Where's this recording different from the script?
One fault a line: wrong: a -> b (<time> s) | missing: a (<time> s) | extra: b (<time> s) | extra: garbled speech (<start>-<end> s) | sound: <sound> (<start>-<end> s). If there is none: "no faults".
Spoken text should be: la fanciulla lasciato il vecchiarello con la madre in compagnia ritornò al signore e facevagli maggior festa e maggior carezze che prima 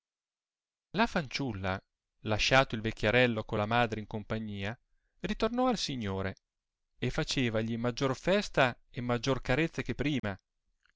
sound: dropout (10.2-10.2 s)